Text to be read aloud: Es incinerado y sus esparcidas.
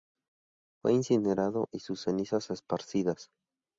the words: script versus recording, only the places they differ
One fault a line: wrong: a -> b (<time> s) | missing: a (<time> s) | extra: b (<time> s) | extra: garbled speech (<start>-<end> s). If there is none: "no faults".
wrong: Es -> Fue (0.8 s)
extra: cenizas (2.0 s)